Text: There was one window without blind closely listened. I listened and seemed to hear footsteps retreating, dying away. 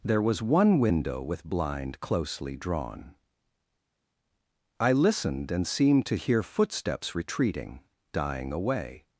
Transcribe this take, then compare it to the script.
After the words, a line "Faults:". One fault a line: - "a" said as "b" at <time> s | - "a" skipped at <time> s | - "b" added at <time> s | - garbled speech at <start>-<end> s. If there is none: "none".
There was one window with blind closely drawn. I listened and seemed to hear footsteps retreating, dying away.
Faults:
- "without" said as "with" at 1.2 s
- "listened" said as "drawn" at 2.5 s